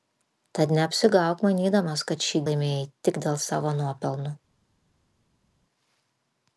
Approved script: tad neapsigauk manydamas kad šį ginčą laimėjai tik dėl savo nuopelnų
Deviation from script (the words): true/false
true